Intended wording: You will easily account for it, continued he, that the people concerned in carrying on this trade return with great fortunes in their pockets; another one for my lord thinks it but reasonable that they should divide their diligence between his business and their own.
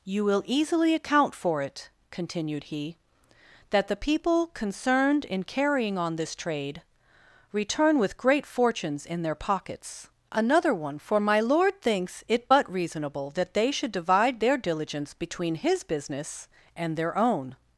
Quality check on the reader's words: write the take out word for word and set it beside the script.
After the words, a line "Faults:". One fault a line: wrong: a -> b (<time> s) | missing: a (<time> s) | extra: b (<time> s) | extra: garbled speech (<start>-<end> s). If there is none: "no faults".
You will easily account for it, continued he, that the people concerned in carrying on this trade return with great fortunes in their pockets; another one for my lord thinks it but reasonable that they should divide their diligence between his business and their own.
Faults:
no faults